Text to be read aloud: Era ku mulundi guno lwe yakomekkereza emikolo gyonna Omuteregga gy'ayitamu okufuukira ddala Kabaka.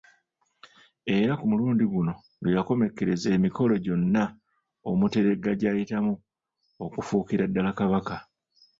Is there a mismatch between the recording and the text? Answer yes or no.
no